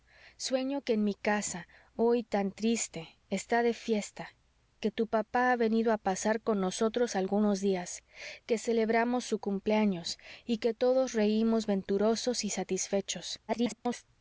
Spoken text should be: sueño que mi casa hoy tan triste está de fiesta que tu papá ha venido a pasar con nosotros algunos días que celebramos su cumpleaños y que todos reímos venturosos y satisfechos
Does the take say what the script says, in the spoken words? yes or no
no